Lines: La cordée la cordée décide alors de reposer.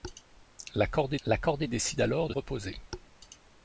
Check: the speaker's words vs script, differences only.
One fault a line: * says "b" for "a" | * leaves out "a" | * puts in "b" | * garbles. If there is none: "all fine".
all fine